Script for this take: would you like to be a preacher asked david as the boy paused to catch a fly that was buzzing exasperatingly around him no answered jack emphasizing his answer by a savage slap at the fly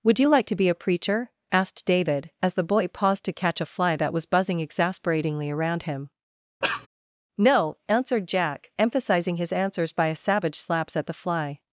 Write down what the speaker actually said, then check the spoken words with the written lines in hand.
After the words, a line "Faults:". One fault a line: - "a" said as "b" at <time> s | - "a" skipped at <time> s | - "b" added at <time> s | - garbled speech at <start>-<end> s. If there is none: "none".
would you like to be a preacher asked david as the boy paused to catch a fly that was buzzing exasperatingly around him no answered jack emphasizing his answers by a savage slaps at the fly
Faults:
- "answer" said as "answers" at 9.5 s
- "slap" said as "slaps" at 10.6 s